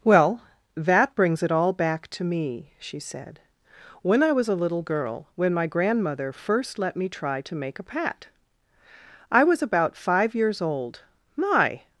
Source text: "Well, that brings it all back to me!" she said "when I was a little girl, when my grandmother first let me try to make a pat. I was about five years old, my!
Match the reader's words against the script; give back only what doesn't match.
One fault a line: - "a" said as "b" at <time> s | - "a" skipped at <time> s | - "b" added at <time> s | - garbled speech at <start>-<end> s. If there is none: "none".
none